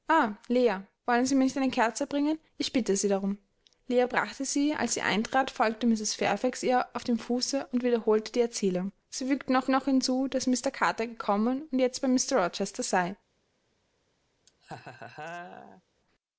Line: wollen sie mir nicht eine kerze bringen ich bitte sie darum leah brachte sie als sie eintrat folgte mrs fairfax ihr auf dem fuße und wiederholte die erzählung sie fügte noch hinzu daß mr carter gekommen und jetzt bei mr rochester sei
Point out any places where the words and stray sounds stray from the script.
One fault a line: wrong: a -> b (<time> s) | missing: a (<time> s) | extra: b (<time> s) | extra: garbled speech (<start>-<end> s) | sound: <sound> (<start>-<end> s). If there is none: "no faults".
extra: noch (9.7 s)
sound: laugh (14.5-15.8 s)